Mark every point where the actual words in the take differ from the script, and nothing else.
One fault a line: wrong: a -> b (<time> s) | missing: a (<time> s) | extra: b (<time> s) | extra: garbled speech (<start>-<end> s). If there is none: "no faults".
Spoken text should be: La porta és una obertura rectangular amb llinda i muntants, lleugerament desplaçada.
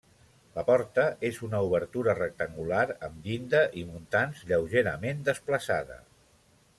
no faults